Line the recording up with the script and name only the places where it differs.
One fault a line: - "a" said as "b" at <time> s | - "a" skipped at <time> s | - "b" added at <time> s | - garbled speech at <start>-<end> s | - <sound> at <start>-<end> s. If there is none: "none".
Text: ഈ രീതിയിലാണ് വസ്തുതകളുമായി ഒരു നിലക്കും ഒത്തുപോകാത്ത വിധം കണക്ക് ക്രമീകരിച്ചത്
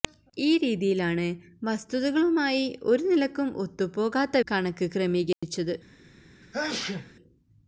- "വിധം" skipped at 4.4 s
- dropout at 5.3-5.4 s
- sneeze at 6.4-7.1 s